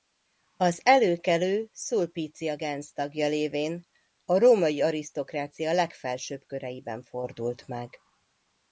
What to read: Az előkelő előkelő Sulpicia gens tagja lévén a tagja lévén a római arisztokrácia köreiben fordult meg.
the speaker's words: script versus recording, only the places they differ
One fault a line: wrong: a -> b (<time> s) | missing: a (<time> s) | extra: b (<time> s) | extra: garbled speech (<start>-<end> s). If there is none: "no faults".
missing: előkelő (1.7 s)
missing: tagja lévén a (4.4 s)
extra: legfelsőbb (5.7 s)